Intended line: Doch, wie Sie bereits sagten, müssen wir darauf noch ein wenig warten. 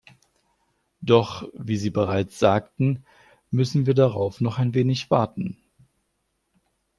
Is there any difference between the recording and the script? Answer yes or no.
no